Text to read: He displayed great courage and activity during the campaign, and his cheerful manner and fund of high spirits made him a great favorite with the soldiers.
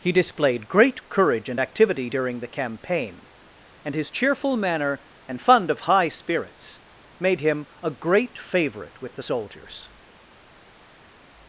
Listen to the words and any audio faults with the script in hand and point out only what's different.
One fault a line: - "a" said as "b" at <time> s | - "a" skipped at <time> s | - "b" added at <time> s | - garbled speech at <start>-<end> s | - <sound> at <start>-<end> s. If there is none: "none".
none